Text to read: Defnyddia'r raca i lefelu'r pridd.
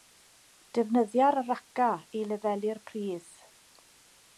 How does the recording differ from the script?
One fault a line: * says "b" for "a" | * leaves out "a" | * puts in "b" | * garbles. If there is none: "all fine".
all fine